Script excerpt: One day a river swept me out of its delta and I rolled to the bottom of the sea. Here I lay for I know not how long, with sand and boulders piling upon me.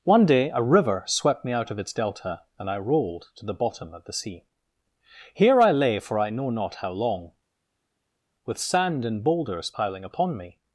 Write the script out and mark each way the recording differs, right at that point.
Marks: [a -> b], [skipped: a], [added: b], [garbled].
One day a river swept me out of its delta and I rolled to the bottom of the sea. Here I lay for I know not how long, with sand and boulders piling upon me.